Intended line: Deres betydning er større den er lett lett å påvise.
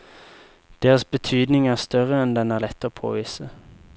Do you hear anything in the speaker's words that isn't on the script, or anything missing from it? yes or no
yes